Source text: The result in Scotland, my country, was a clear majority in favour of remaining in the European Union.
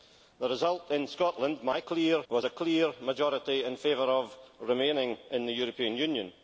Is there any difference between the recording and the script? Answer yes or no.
yes